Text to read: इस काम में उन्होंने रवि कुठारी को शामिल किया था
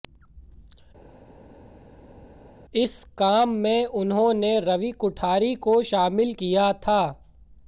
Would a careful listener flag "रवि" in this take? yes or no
no